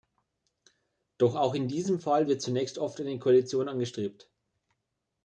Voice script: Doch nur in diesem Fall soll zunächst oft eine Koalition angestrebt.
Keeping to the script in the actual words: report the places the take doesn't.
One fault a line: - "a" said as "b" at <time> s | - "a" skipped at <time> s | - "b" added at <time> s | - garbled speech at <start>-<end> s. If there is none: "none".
- "nur" said as "auch" at 1.4 s
- "soll" said as "wird" at 2.3 s